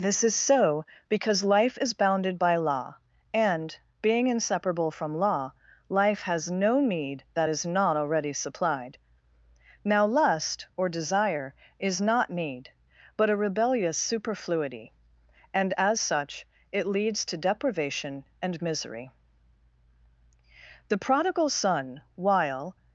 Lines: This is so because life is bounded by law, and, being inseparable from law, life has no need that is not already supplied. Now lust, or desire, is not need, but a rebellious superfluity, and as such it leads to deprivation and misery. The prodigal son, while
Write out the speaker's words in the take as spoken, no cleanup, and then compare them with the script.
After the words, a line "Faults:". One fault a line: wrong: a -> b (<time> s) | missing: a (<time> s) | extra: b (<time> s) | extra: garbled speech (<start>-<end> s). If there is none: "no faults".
This is so because life is bounded by law, and, being inseparable from law, life has no need that is not already supplied. Now lust, or desire, is not need, but a rebellious superfluity, and as such it leads to deprivation and misery. The prodigal son, while
Faults:
no faults